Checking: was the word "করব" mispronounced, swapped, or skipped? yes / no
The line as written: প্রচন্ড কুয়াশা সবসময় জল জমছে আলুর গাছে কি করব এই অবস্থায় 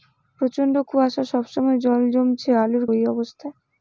yes